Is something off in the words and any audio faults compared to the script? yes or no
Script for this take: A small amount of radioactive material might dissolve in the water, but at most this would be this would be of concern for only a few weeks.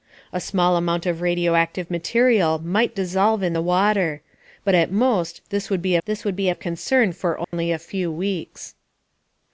yes